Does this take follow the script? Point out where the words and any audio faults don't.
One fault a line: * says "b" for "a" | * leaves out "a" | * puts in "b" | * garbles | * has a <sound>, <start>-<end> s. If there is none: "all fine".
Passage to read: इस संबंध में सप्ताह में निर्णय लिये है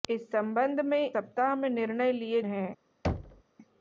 * has a thud, 3.0-3.4 s